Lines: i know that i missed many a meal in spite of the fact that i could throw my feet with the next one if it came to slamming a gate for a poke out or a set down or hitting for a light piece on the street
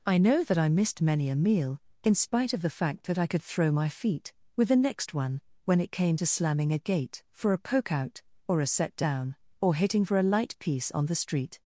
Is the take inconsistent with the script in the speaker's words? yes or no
yes